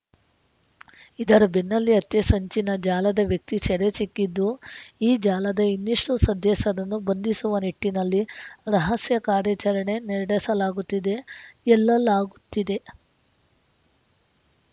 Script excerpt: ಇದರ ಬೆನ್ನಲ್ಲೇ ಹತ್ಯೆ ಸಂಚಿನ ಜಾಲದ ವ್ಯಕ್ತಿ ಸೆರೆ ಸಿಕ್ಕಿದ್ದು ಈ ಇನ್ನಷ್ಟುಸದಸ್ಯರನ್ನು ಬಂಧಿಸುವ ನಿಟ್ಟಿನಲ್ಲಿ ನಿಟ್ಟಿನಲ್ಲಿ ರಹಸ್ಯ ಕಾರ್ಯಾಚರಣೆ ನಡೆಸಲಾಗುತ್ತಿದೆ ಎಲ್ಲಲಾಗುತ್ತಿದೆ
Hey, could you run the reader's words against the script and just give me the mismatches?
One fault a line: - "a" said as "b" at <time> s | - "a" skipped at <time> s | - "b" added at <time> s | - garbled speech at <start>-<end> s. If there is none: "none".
- "ಜಾಲದ" added at 5.2 s
- "ನಿಟ್ಟಿನಲ್ಲಿ" skipped at 8.2 s